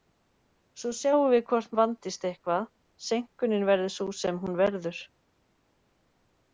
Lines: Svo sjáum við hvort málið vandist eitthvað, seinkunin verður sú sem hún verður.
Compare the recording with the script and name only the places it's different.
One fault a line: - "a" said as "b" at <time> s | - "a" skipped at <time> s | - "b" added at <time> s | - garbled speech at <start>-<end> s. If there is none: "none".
- "málið" skipped at 1.8 s